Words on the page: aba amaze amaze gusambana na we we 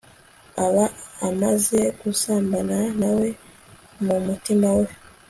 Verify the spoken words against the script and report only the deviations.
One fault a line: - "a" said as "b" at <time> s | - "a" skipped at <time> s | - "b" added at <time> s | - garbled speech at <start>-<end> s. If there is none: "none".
- "amaze" skipped at 1.8 s
- "mu mutima" added at 4.0 s